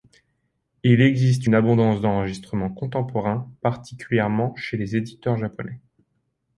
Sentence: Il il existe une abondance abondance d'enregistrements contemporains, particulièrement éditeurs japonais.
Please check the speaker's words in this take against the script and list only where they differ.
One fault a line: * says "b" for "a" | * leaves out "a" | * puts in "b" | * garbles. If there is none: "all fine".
* leaves out "il"
* leaves out "abondance"
* puts in "chez les"